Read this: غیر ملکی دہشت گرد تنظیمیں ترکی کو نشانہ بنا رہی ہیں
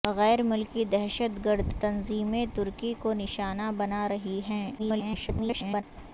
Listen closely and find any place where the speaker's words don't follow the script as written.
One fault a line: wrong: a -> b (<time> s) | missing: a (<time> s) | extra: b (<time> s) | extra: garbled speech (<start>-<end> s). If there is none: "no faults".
extra: garbled speech (4.8-5.8 s)